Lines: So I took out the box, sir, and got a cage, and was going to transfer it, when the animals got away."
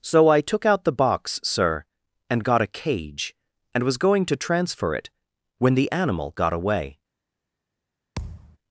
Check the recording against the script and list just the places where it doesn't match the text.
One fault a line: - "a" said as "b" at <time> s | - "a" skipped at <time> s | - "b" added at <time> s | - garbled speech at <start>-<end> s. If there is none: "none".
- "animals" said as "animal" at 5.9 s